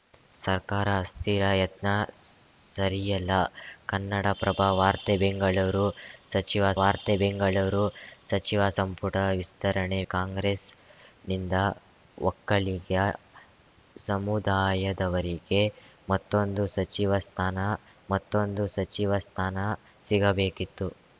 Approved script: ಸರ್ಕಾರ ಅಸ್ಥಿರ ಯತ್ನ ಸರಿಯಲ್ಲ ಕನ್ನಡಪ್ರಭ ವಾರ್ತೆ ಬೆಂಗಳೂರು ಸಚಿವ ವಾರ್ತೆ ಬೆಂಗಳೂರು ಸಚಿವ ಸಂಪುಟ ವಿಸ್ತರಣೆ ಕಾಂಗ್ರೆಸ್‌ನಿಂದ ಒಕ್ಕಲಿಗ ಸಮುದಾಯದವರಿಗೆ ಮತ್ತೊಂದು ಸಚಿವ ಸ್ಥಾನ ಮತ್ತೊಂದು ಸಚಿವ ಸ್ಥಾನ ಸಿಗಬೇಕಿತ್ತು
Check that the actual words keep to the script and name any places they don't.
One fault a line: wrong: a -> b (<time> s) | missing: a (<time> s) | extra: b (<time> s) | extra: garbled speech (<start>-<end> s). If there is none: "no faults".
no faults